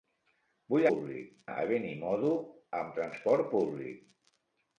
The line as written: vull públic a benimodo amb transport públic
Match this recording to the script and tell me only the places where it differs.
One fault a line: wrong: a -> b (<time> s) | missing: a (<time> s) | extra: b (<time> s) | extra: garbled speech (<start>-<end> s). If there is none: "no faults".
no faults